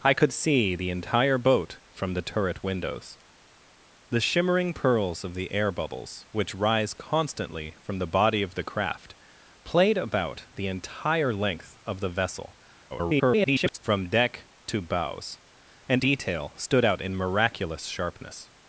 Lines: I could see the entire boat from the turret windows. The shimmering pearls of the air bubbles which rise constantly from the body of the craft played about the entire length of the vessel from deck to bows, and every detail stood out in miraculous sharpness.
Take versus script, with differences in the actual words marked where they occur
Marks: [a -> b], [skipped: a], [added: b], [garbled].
I could see the entire boat from the turret windows. The shimmering pearls of the air bubbles which rise constantly from the body of the craft played about the entire length of the vessel [garbled] from deck to bows, and [skipped: every] detail stood out in miraculous sharpness.